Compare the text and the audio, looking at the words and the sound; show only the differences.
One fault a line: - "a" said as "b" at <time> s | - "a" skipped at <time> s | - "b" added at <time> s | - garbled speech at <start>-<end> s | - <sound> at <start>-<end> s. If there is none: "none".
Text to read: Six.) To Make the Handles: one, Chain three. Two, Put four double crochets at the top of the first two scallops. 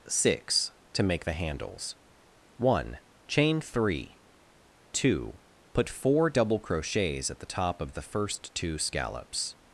none